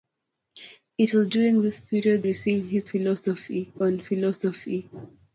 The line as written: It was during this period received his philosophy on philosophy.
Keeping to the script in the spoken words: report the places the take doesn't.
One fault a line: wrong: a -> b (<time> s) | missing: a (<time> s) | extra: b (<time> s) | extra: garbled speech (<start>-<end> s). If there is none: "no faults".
no faults